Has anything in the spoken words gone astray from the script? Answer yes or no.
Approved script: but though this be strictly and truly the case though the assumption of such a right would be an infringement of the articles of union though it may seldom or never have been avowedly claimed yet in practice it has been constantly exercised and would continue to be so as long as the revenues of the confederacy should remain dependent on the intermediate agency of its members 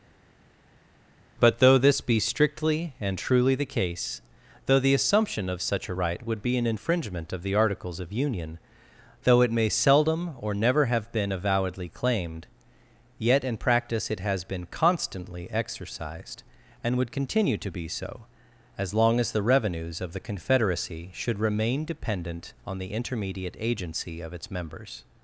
no